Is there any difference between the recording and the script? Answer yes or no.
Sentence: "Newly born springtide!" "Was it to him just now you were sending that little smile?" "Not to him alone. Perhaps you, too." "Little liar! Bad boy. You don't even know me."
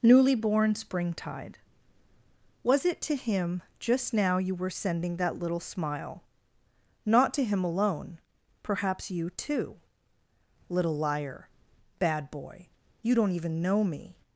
no